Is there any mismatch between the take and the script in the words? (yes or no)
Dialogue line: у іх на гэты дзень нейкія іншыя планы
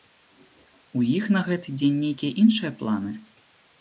no